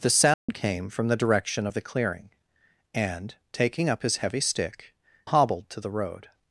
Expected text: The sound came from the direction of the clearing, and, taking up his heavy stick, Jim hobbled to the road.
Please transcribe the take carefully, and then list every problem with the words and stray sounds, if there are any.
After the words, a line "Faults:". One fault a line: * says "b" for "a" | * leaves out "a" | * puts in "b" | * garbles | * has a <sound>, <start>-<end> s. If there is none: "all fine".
The sound came from the direction of the clearing, and, taking up his heavy stick, Hobbled to the road.
Faults:
* has a dropout, 0.3-0.5 s
* leaves out "Jim"